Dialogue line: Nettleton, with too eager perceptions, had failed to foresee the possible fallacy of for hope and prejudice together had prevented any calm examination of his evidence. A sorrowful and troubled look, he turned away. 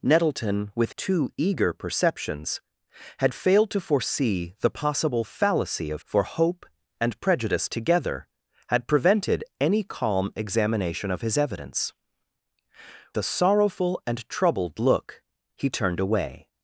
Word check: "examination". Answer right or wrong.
right